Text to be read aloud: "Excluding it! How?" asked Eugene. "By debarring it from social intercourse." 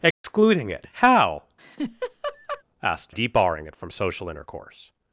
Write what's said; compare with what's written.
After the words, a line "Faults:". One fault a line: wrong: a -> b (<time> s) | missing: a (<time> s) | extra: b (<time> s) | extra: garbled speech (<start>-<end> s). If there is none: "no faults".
"Excluding it! How?" asked Debarring it from social intercourse."
Faults:
missing: Eugene By (3.2 s)